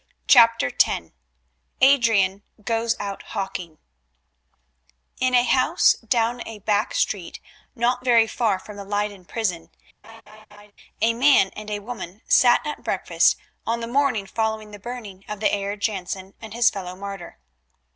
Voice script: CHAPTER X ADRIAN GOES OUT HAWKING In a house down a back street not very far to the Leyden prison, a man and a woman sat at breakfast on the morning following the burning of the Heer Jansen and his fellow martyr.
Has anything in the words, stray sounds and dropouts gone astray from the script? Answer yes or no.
yes